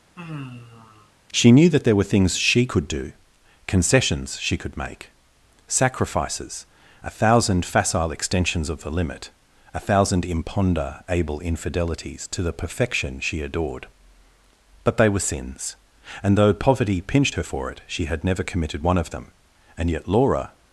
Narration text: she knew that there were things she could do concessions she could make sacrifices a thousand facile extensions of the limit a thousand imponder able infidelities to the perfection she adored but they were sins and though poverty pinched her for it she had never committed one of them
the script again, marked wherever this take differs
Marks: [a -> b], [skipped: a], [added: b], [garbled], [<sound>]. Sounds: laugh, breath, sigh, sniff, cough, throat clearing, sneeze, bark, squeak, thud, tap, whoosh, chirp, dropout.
[sigh] she knew that there were things she could do concessions she could make sacrifices a thousand facile extensions of the limit a thousand imponder able infidelities to the perfection she adored but they were sins and though poverty pinched her for it she had never committed one of them [added: and yet laura]